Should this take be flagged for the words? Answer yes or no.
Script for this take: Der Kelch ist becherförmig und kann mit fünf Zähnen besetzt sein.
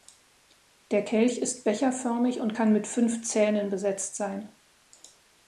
no